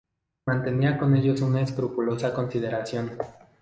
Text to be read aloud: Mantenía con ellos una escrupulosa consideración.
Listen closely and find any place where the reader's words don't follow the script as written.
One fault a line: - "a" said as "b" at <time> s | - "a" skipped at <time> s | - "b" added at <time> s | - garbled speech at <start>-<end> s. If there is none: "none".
none